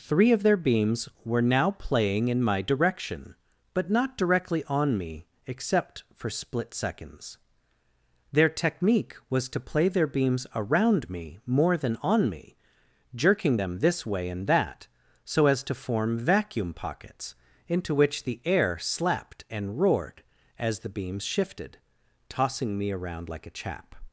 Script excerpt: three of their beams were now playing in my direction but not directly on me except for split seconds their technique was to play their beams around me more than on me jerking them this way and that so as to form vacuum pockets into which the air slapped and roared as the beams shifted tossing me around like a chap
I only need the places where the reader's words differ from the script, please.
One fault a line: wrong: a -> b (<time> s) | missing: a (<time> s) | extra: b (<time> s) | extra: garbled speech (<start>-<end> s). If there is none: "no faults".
no faults